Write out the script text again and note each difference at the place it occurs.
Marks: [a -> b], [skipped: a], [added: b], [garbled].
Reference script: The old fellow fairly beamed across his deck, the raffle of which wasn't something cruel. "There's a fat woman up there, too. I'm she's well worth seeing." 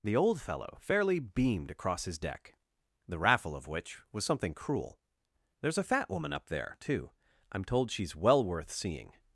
The old fellow fairly beamed across his deck, the raffle of which [wasn't -> was] something cruel. "There's a fat woman up there, too. I'm [added: told] she's well worth seeing."